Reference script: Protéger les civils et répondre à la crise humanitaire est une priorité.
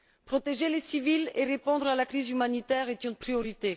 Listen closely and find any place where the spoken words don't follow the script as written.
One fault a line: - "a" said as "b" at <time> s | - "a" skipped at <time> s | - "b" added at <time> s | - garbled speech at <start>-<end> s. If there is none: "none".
none